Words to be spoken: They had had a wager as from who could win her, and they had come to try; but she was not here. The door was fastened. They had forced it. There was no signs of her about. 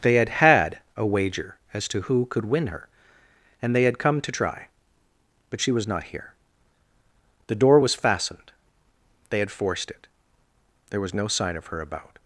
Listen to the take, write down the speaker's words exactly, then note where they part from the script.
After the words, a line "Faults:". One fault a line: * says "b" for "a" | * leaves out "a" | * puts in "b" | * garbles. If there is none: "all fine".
They had had a wager as to who could win her, and they had come to try; but she was not here. The door was fastened. They had forced it. There was no sign of her about.
Faults:
* says "to" for "from"
* says "sign" for "signs"